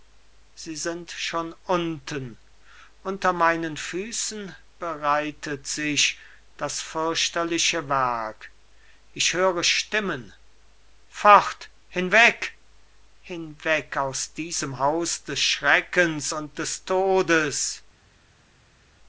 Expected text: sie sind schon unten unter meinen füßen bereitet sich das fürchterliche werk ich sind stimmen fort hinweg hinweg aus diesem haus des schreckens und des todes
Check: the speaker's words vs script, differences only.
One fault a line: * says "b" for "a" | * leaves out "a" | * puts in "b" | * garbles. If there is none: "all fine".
* says "höre" for "sind"